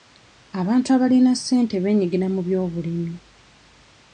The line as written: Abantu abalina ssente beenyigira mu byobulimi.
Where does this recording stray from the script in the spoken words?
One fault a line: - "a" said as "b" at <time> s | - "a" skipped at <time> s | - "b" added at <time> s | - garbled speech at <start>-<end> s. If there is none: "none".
none